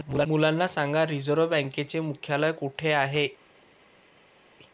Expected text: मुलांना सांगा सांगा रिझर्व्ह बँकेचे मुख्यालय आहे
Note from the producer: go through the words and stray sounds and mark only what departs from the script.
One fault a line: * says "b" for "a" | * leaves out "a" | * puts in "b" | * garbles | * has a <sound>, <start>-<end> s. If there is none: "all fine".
* leaves out "सांगा"
* puts in "कुठे"